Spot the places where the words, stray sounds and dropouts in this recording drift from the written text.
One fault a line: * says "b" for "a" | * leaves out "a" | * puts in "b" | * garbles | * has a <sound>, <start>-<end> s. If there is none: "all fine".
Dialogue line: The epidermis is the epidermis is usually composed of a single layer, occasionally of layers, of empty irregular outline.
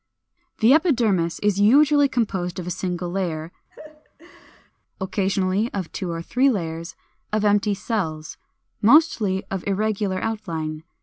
* leaves out "the epidermis is"
* has a laugh, 3.7-4.7 s
* puts in "two or three"
* puts in "cells mostly of"